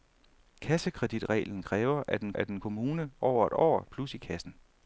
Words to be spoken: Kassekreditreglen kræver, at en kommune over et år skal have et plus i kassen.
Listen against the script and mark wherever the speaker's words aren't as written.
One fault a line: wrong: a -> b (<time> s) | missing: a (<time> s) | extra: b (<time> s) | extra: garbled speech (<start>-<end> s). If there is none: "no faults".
extra: at en (2.3 s)
missing: skal have (3.8 s)